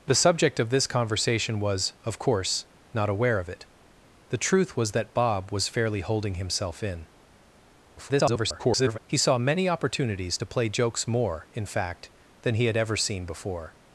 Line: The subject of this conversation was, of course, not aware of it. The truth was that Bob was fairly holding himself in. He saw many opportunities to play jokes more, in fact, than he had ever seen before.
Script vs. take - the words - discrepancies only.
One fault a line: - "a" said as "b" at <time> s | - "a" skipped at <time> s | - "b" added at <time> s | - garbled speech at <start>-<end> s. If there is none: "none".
- garbled speech at 8.0-9.0 s